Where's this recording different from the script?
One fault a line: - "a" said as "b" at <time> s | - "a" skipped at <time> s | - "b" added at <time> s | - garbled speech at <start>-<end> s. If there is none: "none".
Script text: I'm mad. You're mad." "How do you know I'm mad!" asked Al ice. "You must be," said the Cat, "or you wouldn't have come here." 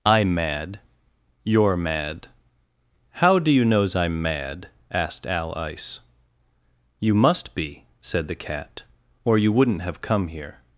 - "know" said as "knows" at 3.6 s